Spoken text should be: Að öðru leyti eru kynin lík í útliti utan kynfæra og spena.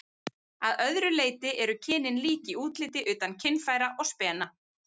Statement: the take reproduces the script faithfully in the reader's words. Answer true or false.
true